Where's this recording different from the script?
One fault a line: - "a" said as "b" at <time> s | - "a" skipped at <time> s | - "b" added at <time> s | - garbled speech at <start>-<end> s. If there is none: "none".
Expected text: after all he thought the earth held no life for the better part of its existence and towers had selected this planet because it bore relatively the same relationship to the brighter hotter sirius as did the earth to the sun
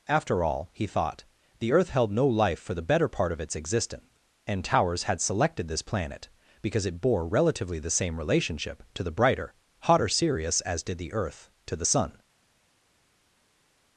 none